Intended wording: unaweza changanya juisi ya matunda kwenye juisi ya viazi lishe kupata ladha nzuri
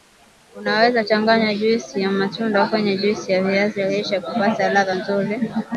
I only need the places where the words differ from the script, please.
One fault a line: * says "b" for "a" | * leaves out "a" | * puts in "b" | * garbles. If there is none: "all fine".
all fine